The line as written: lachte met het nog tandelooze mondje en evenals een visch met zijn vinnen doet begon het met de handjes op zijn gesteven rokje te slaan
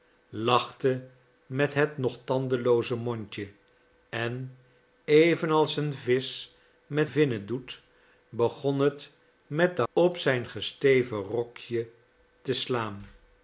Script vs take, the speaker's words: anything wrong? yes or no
yes